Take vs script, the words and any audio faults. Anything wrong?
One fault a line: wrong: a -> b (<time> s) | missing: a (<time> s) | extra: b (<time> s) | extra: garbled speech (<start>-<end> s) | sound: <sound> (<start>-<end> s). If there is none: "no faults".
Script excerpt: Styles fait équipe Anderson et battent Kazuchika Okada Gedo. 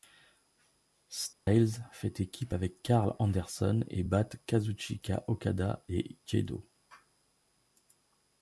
sound: dropout (1.3-1.5 s)
extra: avec Karl (2.5 s)
extra: et (5.9 s)